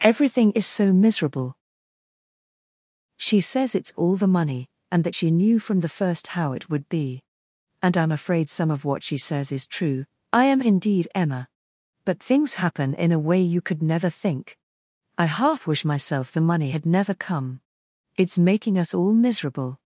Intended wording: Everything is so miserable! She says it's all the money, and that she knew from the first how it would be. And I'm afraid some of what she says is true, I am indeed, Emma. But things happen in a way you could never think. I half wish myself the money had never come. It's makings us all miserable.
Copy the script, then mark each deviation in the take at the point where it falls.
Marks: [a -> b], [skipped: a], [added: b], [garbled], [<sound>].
Everything is so miserable! She says it's all the money, and that she knew from the first how it would be. And I'm afraid some of what she says is true, I am indeed, Emma. But things happen in a way you could never think. I half wish myself the money had never come. It's [makings -> making] us all miserable.